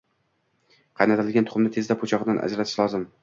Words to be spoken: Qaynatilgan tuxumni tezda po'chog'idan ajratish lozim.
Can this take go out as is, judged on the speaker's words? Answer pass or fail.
pass